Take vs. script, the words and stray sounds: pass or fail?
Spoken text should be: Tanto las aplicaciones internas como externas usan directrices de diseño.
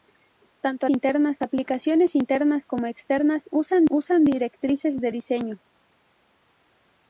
fail